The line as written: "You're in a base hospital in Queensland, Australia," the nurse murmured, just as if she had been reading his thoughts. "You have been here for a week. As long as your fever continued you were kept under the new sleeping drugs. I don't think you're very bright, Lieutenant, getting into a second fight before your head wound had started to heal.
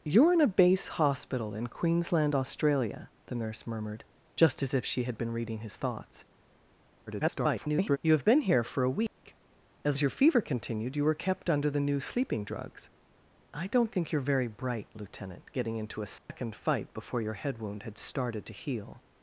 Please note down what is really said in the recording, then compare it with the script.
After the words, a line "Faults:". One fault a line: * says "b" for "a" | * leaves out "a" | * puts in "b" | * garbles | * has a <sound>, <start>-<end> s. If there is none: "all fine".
"You're in a base hospital in Queensland, Australia," the nurse murmured, just as if she had been reading his thoughts. [garbled] "You have been here for a week. As as your fever continued you were kept under the new sleeping drugs. I don't think you're very bright, Lieutenant, getting into a second fight before your head wound had started to heal.
Faults:
* garbles
* has a dropout, 9.1-9.2 s
* leaves out "long"
* has a dropout, 16.2-16.3 s